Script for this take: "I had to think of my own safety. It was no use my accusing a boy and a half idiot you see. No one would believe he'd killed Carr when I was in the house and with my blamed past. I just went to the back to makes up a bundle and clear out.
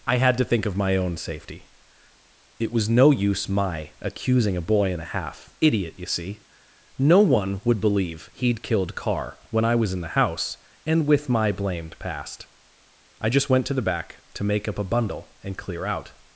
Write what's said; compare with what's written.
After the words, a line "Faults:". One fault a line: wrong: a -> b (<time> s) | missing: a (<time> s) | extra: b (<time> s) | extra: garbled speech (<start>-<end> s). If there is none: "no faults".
"I had to think of my own safety. It was no use my accusing a boy and a half idiot you see. No one would believe he'd killed Carr when I was in the house and with my blamed past. I just went to the back to make up a bundle and clear out.
Faults:
wrong: makes -> make (14.4 s)